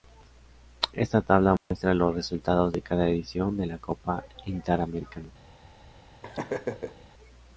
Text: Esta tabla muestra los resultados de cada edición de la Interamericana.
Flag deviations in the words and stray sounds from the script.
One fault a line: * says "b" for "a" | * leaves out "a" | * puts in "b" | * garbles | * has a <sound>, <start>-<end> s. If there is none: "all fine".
* has a dropout, 1.6-1.7 s
* puts in "Copa"
* has a laugh, 6.2-7.1 s